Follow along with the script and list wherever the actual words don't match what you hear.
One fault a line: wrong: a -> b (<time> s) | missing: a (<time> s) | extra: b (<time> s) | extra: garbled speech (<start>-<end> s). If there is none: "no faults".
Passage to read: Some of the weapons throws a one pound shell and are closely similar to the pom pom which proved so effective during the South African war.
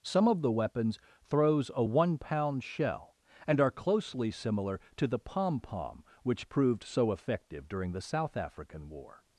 no faults